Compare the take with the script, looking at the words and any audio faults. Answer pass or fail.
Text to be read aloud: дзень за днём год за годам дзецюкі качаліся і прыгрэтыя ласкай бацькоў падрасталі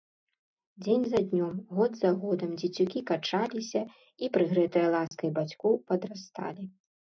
fail